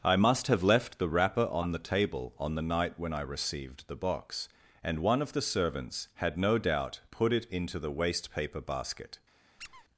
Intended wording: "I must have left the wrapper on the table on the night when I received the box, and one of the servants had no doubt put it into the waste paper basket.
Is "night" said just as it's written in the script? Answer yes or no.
yes